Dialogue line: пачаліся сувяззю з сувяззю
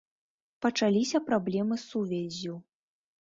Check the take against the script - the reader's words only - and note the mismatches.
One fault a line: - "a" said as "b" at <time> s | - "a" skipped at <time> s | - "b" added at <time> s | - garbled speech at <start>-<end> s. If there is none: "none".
- "сувяззю" said as "праблемы" at 1.3 s